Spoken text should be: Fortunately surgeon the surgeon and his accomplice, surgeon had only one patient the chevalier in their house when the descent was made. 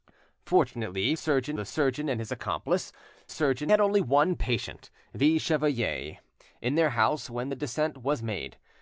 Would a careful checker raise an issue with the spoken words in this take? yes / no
no